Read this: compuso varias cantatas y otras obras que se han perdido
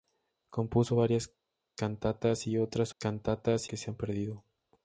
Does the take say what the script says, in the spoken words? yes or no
no